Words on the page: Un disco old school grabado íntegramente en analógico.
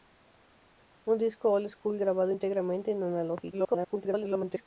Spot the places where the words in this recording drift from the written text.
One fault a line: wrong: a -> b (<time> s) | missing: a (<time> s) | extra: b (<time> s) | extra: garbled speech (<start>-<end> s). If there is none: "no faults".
extra: garbled speech (3.5-4.7 s)